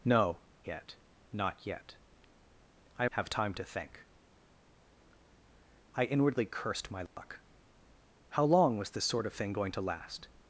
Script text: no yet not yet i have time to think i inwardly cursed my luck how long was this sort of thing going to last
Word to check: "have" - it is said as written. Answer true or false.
true